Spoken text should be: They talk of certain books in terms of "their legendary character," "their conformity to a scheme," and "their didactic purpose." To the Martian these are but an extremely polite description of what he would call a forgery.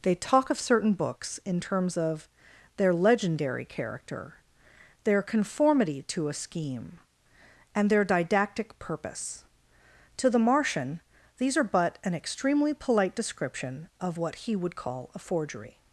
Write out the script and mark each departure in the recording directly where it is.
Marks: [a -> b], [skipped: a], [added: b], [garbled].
They talk of certain books in terms of "their legendary character," "their conformity to a scheme," and "their didactic purpose." To the Martian these are but an extremely polite description of what he would call a forgery.